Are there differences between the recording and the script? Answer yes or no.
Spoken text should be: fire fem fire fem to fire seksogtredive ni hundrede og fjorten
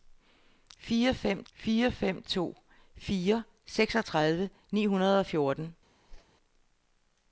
no